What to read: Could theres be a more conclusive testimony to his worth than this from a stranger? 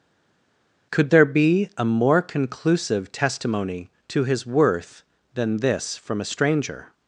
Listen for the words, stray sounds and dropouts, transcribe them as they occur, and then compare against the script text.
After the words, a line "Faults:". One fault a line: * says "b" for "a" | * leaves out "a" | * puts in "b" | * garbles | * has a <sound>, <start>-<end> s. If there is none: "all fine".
Could there be a more conclusive testimony to his worth than this from a stranger?
Faults:
* says "there" for "theres"